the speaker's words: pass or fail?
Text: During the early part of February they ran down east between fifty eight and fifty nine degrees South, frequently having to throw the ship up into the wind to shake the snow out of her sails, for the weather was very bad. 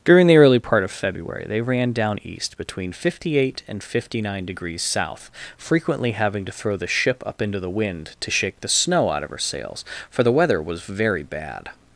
pass